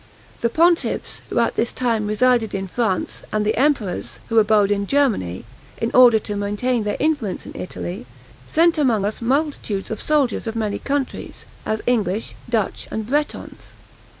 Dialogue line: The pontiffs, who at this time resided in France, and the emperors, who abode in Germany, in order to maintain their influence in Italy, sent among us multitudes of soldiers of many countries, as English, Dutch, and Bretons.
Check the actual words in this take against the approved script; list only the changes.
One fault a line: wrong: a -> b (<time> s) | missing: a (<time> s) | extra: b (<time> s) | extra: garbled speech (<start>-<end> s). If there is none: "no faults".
no faults